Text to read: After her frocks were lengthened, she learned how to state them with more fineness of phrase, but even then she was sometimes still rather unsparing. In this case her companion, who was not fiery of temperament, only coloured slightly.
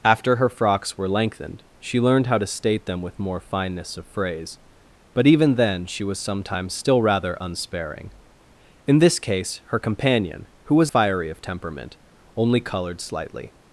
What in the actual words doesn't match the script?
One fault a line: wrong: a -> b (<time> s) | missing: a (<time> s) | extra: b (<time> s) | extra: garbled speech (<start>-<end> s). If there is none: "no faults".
missing: not (10.9 s)